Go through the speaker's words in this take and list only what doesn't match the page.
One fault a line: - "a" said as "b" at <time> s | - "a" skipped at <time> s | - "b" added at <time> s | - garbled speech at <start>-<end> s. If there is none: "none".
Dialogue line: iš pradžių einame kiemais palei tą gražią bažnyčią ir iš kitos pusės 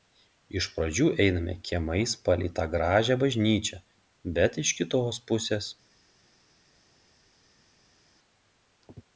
- "ir" said as "bet" at 4.4 s